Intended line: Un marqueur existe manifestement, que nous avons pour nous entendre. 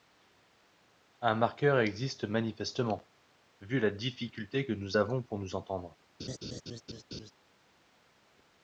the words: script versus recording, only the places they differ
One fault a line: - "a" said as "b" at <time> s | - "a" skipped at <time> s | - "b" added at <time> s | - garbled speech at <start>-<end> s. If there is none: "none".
- "vu la difficulté" added at 3.6 s